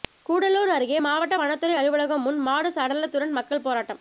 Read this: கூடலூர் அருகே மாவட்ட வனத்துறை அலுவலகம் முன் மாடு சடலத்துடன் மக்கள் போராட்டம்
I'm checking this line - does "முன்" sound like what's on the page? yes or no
yes